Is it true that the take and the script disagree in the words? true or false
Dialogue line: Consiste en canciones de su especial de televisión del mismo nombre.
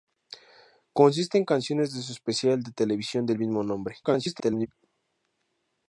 true